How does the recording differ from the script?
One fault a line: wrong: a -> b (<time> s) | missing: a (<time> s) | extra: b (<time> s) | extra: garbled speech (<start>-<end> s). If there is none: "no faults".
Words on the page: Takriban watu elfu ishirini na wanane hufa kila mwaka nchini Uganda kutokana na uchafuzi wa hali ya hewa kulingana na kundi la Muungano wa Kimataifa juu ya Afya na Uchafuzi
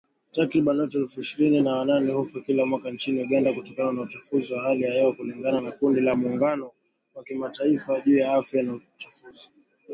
no faults